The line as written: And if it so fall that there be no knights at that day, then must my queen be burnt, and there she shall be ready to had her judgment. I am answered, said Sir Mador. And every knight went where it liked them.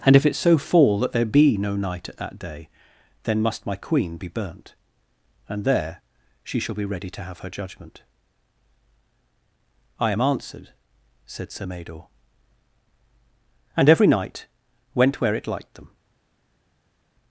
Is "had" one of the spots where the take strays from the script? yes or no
yes